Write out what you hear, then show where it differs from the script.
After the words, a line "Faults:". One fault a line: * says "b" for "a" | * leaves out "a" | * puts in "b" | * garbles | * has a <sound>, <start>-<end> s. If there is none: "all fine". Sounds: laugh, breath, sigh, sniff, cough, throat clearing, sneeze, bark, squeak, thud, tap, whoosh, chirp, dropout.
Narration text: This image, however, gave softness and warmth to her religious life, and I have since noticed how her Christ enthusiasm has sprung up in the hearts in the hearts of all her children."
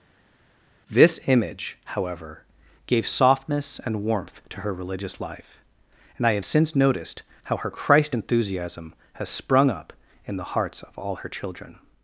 This image, however, gave softness and warmth to her religious life, and I have since noticed how her Christ enthusiasm has sprung up in the hearts of all her children."
Faults:
* leaves out "in the hearts"